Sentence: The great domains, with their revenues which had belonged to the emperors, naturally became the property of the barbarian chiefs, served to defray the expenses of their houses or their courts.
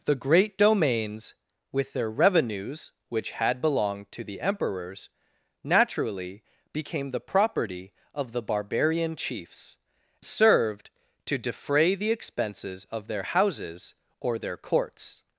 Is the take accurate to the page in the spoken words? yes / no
yes